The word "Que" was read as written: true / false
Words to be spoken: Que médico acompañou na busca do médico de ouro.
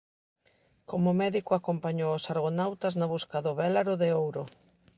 false